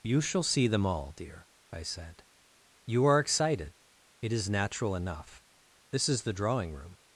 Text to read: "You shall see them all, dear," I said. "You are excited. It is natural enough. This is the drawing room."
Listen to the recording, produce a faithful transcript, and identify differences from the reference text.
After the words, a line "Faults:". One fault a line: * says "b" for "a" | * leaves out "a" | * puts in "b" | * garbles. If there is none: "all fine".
"You shall see them all, dear," I said. "You are excited. It is natural enough. This is the drawing room."
Faults:
all fine